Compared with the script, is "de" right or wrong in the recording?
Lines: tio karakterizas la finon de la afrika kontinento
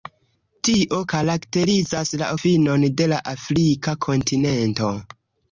right